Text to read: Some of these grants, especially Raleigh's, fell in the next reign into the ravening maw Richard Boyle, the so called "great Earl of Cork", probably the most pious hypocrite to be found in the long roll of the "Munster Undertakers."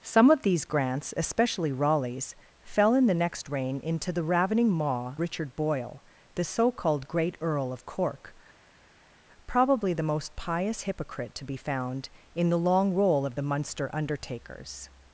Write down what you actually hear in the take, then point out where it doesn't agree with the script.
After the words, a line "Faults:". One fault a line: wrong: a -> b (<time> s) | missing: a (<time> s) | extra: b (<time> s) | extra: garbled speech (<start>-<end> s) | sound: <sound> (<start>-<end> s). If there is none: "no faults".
Some of these grants, especially Raleigh's, fell in the next reign into the ravening maw Richard Boyle, the so called "great Earl of Cork", probably the most pious hypocrite to be found in the long roll of the "Munster Undertakers."
Faults:
no faults